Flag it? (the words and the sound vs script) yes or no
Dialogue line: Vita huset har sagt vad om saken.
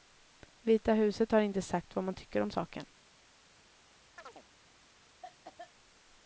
yes